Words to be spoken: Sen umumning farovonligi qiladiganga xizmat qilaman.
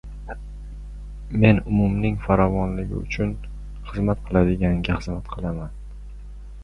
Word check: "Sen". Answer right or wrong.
wrong